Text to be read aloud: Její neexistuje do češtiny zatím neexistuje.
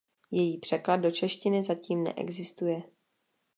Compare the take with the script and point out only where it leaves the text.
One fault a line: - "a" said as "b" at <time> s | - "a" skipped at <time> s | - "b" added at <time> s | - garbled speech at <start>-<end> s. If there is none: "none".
- "neexistuje" said as "překlad" at 0.6 s